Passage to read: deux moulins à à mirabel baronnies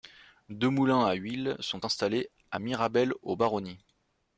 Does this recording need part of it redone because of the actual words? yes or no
yes